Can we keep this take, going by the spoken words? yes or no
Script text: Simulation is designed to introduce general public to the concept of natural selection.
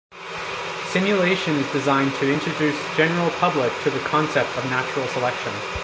yes